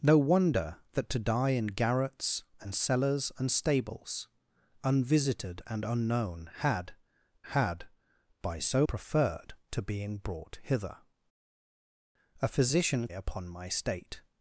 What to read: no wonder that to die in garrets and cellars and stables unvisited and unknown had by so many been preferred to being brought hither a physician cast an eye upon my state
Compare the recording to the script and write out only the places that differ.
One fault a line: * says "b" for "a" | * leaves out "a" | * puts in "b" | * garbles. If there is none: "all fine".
* puts in "had"
* leaves out "many been"
* leaves out "cast an eye"